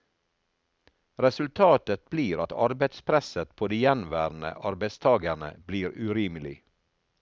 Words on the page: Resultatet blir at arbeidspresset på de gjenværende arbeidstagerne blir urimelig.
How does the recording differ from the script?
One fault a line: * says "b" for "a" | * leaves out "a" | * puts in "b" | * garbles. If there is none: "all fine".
all fine